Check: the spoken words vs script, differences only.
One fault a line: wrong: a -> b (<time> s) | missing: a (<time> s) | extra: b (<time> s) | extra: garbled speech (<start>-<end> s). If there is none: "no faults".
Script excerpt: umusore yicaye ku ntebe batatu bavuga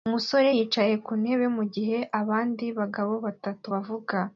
extra: mugihe abandi bagabo (1.6 s)